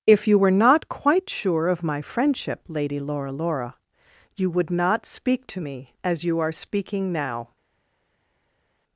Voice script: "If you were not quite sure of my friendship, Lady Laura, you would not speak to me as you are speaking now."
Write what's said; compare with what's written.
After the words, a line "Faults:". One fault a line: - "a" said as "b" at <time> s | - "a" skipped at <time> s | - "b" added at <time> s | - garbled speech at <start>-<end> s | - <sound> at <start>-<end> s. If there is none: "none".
"If you were not quite sure of my friendship, Lady Laura Laura, you would not speak to me as you are speaking now."
Faults:
- "Laura" added at 3.3 s